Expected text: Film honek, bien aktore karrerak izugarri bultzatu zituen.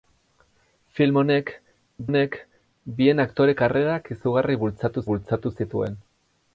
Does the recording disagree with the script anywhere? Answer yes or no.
yes